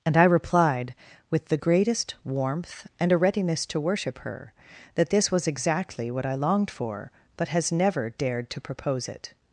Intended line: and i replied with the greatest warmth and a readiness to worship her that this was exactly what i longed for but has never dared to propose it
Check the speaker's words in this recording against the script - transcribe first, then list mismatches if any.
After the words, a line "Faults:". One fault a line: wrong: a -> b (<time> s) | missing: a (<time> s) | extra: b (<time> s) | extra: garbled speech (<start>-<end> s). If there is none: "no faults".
and i replied with the greatest warmth and a readiness to worship her that this was exactly what i longed for but has never dared to propose it
Faults:
no faults